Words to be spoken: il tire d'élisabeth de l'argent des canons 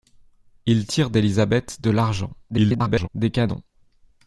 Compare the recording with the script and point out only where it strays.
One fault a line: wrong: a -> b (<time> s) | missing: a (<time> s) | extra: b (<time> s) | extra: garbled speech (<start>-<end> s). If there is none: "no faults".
extra: garbled speech (2.5-3.1 s)